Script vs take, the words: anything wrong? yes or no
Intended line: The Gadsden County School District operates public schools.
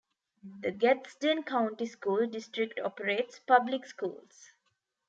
no